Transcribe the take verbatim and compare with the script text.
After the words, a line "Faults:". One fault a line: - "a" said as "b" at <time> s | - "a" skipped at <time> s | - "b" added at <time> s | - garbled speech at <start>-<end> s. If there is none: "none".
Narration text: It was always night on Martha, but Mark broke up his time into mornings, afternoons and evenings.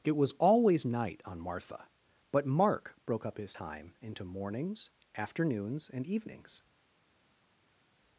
It was always night on Martha, but Mark broke up his time into mornings, afternoons and evenings.
Faults:
none